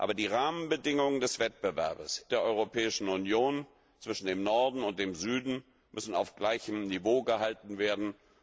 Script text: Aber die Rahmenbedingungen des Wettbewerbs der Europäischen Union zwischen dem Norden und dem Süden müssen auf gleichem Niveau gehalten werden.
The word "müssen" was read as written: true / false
true